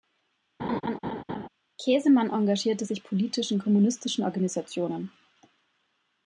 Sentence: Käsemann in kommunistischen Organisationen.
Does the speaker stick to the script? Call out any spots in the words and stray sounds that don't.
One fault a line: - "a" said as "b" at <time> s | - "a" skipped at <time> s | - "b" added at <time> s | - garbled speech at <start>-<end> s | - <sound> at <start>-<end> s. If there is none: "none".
- laugh at 0.6-1.5 s
- "engagierte sich politisch" added at 2.3 s